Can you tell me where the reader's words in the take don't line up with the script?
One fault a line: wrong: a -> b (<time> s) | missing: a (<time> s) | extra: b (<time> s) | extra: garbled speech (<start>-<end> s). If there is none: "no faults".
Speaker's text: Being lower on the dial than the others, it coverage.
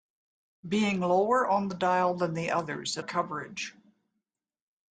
no faults